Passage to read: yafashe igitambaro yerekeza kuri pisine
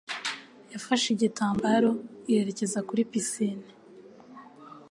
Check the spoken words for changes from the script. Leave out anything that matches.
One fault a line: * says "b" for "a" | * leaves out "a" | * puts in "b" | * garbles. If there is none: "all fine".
all fine